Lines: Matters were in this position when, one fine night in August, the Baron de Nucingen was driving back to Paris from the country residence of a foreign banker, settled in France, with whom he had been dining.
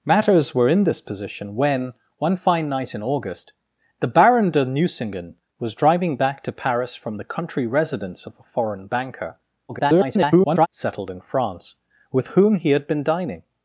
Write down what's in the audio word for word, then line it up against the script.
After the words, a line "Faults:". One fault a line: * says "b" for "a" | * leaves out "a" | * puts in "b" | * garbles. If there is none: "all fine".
Matters were in this position when, one fine night in August, the Baron de Nucingen was driving back to Paris from the country residence of a foreign banker, [garbled] settled in France, with whom he had been dining.
Faults:
* garbles